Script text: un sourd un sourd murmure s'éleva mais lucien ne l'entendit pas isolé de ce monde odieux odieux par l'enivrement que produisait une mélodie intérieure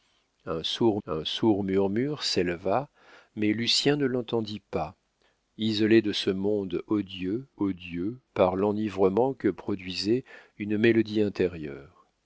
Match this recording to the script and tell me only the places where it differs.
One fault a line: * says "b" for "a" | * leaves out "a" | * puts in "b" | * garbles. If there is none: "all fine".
all fine